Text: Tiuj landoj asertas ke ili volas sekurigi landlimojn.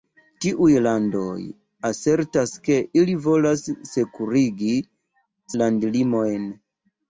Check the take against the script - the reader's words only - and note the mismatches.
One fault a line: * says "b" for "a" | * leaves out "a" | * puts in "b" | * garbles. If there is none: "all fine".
all fine